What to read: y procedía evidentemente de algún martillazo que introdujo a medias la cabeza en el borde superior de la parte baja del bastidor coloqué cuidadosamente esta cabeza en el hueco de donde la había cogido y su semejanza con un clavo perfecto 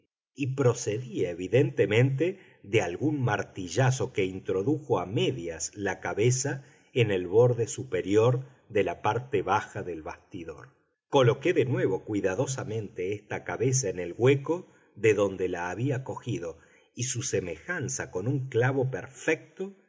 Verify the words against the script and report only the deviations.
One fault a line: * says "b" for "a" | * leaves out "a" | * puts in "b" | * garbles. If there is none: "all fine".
* puts in "de nuevo"